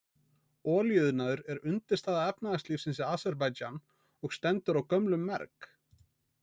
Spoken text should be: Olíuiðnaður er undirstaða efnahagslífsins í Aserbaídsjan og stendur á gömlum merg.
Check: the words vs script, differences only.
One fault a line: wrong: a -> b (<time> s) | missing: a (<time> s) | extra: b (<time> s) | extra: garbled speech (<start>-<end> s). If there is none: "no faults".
no faults